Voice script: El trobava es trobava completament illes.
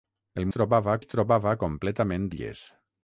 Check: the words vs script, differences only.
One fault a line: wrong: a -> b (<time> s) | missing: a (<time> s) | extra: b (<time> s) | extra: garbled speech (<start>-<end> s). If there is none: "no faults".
no faults